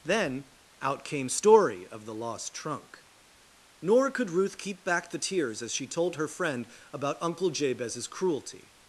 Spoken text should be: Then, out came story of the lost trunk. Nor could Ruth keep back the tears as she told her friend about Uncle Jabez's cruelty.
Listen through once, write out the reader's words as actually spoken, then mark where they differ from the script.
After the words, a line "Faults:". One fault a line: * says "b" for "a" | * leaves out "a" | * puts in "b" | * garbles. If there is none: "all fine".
Then, out came story of the lost trunk. Nor could Ruth keep back the tears as she told her friend about Uncle Jabez's cruelty.
Faults:
all fine